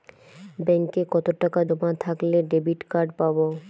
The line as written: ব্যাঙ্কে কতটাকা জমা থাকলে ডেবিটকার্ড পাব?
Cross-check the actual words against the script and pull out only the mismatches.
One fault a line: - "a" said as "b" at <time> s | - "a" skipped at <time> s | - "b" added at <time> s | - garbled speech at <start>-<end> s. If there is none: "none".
none